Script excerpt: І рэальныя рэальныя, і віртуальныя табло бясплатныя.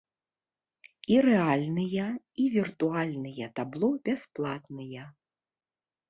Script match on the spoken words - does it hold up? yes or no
no